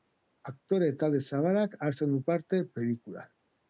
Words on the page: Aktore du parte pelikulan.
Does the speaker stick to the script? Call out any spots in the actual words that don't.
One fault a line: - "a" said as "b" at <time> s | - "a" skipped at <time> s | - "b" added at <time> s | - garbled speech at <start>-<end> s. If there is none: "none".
- "talde zabalak hartzen" added at 1.0 s